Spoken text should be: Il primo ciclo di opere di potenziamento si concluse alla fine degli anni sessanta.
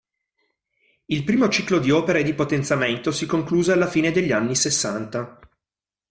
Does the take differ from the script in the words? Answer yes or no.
no